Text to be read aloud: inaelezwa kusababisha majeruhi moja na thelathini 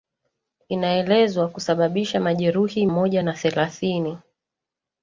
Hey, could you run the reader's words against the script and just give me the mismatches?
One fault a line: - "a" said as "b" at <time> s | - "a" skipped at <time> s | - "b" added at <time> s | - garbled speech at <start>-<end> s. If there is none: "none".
none